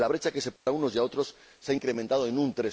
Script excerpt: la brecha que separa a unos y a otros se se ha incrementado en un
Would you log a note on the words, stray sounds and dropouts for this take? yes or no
yes